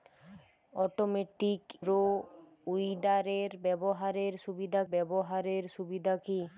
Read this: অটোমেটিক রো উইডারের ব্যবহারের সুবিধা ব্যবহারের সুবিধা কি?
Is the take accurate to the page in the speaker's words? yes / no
yes